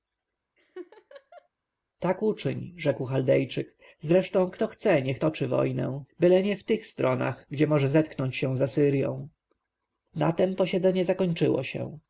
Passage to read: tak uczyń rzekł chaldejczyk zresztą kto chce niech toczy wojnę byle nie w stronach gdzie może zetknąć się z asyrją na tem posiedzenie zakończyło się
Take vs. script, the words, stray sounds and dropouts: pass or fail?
fail